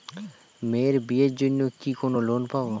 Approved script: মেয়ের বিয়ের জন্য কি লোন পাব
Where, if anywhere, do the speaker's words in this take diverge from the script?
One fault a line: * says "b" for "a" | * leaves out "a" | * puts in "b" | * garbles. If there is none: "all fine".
* puts in "কোন"